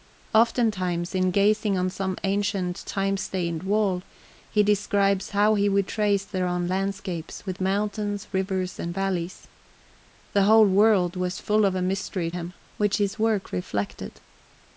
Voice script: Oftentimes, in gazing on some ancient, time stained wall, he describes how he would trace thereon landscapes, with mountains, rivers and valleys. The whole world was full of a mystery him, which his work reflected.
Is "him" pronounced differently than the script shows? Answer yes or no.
no